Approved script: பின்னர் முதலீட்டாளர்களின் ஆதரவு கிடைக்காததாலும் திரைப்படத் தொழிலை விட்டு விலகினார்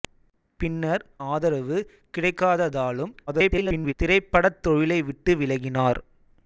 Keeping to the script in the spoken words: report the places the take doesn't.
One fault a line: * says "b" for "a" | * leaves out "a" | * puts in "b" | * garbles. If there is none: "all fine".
* leaves out "முதலீட்டாளர்களின்"
* garbles